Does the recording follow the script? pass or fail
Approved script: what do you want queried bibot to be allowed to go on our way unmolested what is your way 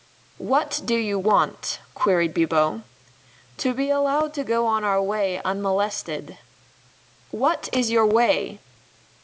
pass